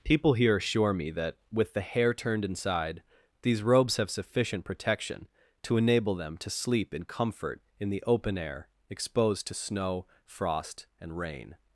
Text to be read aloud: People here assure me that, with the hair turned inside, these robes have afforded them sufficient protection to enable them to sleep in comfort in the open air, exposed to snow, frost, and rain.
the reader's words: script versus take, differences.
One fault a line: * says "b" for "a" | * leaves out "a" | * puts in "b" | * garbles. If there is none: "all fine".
* leaves out "afforded them"